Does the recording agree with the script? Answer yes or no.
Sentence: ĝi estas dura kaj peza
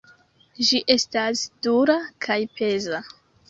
yes